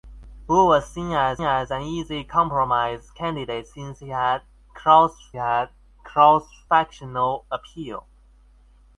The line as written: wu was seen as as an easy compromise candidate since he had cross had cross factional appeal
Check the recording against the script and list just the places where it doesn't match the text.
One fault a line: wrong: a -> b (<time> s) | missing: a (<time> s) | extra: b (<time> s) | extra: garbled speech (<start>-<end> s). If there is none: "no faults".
no faults